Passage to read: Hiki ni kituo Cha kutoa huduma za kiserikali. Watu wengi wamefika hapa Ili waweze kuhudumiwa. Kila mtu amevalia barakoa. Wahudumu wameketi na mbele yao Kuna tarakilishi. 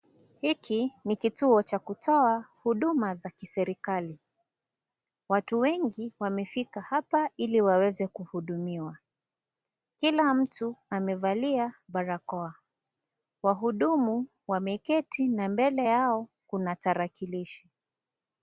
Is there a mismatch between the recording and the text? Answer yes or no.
no